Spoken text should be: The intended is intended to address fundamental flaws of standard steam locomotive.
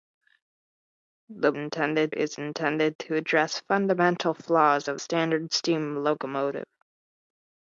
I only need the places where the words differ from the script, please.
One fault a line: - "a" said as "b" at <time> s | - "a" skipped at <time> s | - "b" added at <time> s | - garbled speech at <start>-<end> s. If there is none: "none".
none